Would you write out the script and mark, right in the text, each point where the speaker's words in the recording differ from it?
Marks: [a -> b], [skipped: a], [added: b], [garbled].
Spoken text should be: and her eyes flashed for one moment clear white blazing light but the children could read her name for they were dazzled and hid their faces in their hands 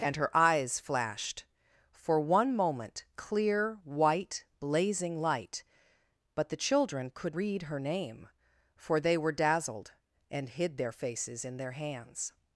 and her eyes flashed for one moment clear white blazing light but the children could read her name for they were dazzled and hid their faces in their hands